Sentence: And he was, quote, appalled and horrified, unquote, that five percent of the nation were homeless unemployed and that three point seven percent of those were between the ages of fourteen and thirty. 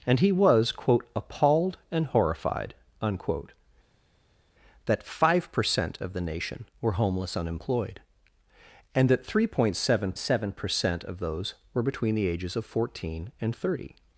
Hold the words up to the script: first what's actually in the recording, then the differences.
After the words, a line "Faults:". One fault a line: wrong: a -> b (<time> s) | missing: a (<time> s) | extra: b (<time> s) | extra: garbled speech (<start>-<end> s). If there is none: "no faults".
And he was, quote, appalled and horrified, unquote, that five percent of the nation were homeless unemployed and that three point seven seven percent of those were between the ages of fourteen and thirty.
Faults:
extra: seven (10.2 s)